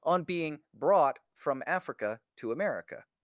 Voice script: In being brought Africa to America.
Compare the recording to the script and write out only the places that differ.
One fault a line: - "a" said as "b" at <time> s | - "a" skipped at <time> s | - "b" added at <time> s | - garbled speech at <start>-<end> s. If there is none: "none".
- "In" said as "On" at 0.0 s
- "from" added at 1.3 s